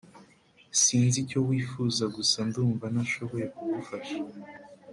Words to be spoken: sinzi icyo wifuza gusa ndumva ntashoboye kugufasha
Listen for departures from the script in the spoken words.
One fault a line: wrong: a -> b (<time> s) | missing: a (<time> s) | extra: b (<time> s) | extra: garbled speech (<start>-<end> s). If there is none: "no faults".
no faults